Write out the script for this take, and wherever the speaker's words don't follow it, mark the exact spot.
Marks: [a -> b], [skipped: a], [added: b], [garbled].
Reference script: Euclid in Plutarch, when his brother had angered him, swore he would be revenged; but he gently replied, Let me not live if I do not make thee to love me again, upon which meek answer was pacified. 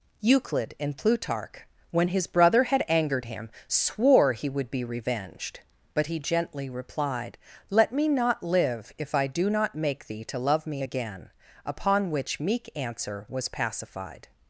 Euclid in Plutarch, when his brother had angered him, swore he would be revenged; but he gently replied, Let me not live if I do not make thee to love me again, upon which meek answer was pacified.